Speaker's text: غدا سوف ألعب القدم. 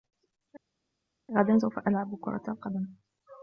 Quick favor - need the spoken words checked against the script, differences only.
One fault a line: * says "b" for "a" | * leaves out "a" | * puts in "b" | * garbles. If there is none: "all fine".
* puts in "كرة"